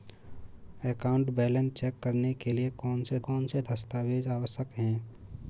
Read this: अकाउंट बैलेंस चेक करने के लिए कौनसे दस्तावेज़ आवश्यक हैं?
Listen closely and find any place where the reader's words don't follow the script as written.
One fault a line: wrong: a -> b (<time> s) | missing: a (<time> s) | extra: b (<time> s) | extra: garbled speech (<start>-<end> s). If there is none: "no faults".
extra: कौनसे (3.3 s)